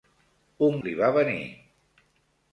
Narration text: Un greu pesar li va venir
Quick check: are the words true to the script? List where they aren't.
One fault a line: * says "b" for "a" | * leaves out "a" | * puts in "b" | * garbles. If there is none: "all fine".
* leaves out "greu pesar"